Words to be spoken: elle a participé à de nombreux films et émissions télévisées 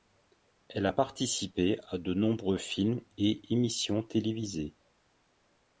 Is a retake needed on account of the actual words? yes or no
no